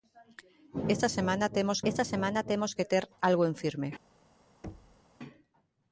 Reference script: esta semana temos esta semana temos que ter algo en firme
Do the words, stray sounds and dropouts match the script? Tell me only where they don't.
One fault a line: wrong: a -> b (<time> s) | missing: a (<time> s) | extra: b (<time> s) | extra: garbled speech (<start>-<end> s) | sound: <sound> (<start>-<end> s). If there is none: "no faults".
sound: thud (4.6-5.0 s)